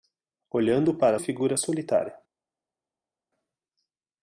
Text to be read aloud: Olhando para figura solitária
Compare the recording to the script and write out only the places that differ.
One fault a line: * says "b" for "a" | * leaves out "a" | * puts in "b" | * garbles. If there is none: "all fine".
all fine